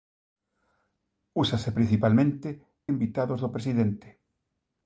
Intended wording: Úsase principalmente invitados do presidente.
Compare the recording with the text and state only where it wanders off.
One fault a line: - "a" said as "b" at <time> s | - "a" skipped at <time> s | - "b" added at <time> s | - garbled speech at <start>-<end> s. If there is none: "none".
none